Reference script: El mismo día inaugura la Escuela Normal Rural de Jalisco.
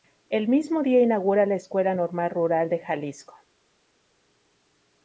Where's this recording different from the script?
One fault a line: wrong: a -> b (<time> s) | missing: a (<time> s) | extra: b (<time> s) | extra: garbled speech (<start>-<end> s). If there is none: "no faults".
no faults